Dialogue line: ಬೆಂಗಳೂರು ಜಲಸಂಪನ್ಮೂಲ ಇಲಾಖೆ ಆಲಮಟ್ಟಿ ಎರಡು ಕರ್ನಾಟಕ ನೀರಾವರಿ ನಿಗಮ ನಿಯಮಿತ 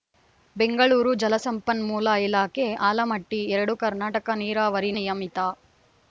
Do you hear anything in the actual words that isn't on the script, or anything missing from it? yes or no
yes